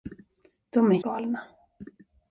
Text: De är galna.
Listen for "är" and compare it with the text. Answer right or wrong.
right